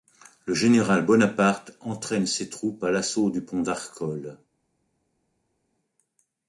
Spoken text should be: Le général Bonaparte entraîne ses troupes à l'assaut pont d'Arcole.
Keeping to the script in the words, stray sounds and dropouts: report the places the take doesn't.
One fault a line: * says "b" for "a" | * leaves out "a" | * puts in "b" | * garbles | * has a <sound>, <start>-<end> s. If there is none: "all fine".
* puts in "du"